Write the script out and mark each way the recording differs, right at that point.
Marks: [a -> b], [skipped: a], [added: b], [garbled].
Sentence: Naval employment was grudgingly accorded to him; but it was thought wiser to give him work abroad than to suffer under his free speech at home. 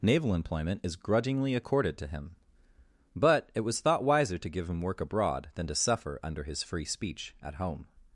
Naval employment [was -> is] grudgingly accorded to him; but it was thought wiser to give him work abroad than to suffer under his free speech at home.